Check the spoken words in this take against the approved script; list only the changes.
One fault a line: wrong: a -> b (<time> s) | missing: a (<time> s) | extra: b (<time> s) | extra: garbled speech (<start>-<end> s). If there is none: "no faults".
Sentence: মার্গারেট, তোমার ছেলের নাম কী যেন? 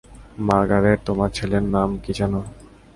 no faults